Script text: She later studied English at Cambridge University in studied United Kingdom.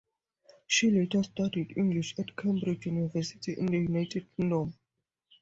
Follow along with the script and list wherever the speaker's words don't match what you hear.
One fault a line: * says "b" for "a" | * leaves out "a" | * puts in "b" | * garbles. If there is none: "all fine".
* says "the" for "studied"